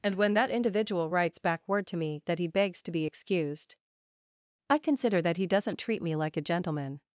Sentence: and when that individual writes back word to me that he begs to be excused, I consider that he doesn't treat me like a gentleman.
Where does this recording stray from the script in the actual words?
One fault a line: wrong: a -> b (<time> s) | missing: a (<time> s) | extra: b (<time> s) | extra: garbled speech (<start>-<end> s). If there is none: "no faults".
no faults